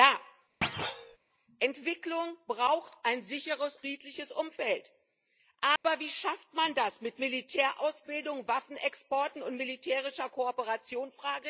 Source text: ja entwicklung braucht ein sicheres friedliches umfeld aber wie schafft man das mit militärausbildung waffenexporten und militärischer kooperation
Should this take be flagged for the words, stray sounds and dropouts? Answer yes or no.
yes